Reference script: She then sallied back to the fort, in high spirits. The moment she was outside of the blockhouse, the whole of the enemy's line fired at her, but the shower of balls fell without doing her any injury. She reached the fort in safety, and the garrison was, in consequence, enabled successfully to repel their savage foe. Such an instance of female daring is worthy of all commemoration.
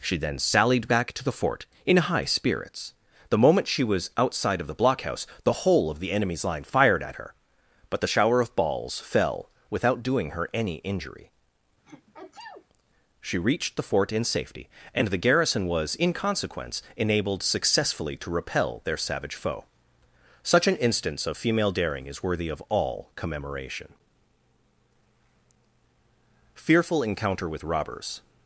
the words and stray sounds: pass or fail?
fail